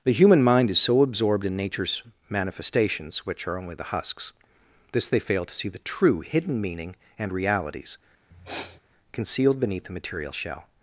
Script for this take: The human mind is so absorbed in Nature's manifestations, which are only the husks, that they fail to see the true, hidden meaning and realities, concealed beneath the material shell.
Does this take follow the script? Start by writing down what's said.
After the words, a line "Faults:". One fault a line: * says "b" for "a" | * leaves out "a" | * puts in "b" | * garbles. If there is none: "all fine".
The human mind is so absorbed in Nature's manifestations, which are only the husks, this they fail to see the true, hidden meaning and realities, concealed beneath the material shell.
Faults:
* says "this" for "that"